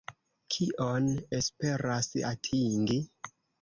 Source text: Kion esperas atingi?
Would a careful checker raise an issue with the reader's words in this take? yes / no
no